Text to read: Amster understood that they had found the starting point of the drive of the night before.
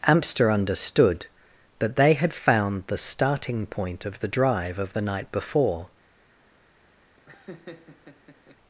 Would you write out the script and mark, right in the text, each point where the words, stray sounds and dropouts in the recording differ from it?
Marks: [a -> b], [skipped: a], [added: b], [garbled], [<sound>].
Amster understood that they had found the starting point of the drive of the night before. [laugh]